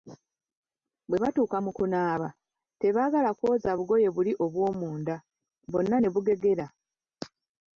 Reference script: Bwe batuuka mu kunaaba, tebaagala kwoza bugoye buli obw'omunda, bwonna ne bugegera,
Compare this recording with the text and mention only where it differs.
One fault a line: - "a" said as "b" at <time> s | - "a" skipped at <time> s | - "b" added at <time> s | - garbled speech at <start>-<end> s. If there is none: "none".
none